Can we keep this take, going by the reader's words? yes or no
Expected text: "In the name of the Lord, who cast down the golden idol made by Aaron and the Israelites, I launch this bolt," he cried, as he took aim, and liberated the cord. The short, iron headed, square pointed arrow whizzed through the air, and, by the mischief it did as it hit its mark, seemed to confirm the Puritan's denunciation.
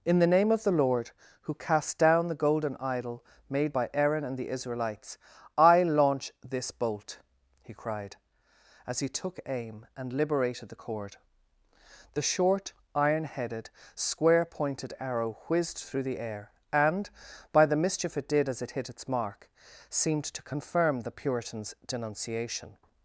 yes